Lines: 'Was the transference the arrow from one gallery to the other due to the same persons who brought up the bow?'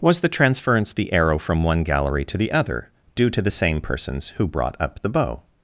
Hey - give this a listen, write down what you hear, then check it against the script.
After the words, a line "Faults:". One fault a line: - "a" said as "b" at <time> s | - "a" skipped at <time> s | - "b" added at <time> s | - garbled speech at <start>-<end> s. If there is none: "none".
'Was the transference the arrow from one gallery to the other due to the same persons who brought up the bow?'
Faults:
none